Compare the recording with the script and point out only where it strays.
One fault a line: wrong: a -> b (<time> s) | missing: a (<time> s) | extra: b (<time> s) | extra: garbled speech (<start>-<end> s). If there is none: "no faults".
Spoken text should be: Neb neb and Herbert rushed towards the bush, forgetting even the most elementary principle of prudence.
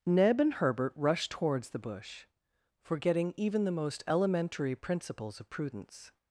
missing: neb (0.4 s)
wrong: principle -> principles (4.7 s)